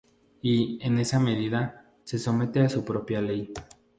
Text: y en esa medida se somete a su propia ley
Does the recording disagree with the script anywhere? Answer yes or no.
no